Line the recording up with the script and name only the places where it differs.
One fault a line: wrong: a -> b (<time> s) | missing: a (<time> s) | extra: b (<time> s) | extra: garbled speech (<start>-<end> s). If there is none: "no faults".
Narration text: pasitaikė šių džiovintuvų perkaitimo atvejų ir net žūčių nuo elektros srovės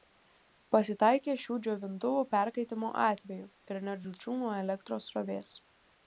no faults